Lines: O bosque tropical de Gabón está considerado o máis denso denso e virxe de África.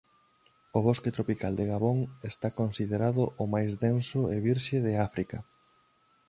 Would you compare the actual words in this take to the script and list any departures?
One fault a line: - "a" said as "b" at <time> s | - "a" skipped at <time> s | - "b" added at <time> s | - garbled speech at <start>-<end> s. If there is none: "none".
- "denso" skipped at 4.2 s